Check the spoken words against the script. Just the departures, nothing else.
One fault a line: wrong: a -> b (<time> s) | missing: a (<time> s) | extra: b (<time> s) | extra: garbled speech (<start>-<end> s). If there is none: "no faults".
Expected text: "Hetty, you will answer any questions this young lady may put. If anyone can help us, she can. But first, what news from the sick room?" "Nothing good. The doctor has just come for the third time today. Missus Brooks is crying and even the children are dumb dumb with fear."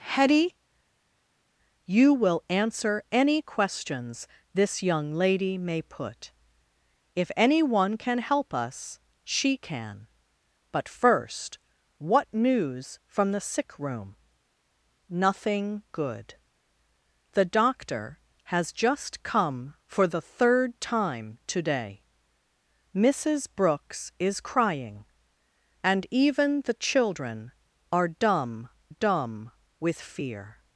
no faults